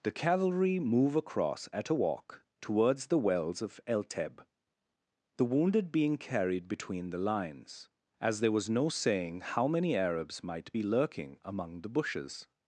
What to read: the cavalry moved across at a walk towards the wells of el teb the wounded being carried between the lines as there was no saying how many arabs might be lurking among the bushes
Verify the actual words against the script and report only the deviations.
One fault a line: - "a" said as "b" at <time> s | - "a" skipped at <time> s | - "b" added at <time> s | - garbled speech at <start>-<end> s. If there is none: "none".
- "moved" said as "move" at 0.8 s